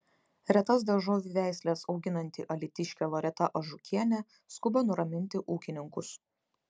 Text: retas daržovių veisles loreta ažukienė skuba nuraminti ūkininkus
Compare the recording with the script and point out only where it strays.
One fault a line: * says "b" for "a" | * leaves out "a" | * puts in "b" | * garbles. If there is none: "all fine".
* puts in "auginanti alytiškė"